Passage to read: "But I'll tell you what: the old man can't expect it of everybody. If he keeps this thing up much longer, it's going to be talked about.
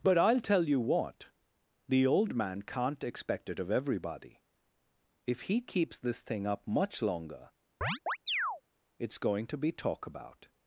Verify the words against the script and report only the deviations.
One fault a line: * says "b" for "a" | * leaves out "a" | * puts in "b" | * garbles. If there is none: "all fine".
* says "talk" for "talked"